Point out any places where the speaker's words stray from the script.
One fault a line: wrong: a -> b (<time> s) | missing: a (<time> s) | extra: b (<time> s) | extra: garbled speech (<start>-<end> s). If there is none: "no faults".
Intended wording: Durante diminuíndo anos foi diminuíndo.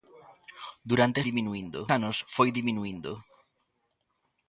no faults